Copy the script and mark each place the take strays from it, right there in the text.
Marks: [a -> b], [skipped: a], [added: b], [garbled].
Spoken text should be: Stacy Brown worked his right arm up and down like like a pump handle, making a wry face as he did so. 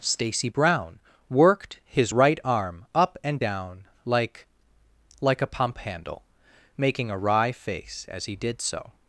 Stacy Brown worked his right arm up and down like like a pump handle, making a wry face as he did so.